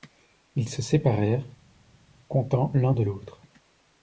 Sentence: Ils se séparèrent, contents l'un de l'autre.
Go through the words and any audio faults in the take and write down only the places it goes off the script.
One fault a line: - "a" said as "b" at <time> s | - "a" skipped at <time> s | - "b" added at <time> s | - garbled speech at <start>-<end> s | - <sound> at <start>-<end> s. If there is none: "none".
none